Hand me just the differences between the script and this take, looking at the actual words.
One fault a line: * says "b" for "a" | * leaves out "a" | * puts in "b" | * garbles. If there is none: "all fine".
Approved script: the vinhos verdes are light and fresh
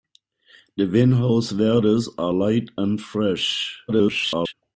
* garbles